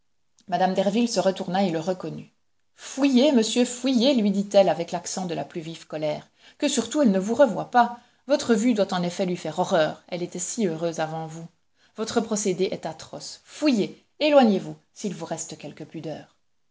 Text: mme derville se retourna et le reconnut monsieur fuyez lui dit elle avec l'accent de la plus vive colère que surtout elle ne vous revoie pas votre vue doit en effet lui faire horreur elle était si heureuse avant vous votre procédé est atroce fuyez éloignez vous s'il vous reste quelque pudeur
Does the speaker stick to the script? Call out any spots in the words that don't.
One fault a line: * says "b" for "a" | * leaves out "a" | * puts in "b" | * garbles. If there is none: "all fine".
* puts in "fuyez"